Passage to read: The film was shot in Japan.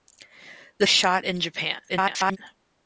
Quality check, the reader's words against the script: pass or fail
fail